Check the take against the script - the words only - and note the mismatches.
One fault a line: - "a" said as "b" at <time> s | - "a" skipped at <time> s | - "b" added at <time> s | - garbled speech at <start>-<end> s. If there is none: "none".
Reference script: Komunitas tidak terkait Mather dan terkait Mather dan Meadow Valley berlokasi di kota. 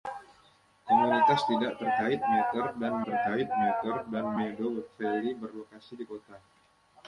none